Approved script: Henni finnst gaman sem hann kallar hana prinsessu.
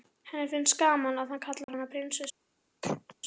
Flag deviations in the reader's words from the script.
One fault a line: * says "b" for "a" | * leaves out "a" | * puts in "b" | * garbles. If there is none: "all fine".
* says "að" for "sem"